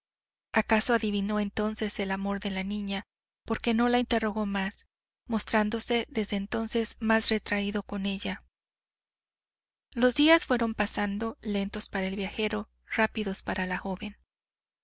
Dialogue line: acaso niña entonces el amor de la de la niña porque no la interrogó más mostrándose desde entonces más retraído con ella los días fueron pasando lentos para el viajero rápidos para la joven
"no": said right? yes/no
yes